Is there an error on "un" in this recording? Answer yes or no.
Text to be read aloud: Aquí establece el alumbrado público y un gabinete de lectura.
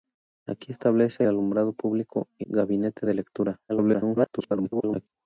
yes